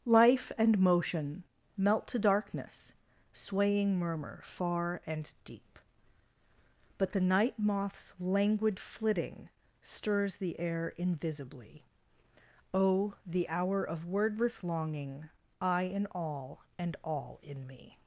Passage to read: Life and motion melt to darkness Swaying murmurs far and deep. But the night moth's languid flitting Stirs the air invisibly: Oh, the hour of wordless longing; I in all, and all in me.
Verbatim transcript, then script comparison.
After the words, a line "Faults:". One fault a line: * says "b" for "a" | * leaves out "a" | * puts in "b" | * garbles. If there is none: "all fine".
Life and motion melt to darkness Swaying murmur far and deep. But the night moth's languid flitting Stirs the air invisibly: Oh, the hour of wordless longing; I in all, and all in me.
Faults:
* says "murmur" for "murmurs"